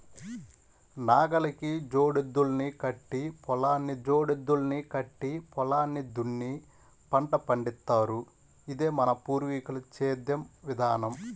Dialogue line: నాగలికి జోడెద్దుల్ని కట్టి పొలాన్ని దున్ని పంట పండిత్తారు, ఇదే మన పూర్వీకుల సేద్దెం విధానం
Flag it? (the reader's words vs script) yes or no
yes